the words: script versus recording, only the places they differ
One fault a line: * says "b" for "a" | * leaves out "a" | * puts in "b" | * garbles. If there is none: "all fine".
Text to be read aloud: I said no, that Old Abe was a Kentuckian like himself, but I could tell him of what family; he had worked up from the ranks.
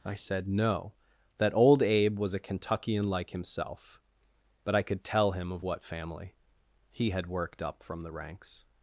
all fine